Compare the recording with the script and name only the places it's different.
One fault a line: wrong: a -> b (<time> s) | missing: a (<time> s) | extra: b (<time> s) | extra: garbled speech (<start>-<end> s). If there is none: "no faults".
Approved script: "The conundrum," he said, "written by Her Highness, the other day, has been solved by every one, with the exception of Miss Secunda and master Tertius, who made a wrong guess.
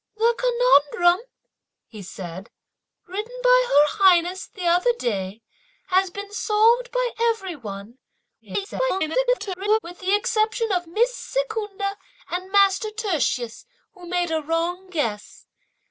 extra: garbled speech (8.4-9.8 s)